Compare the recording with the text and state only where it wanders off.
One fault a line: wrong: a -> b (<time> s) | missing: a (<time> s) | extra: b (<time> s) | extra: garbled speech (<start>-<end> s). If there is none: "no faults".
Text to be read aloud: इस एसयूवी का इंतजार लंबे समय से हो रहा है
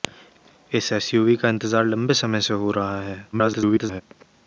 extra: garbled speech (3.3-4.0 s)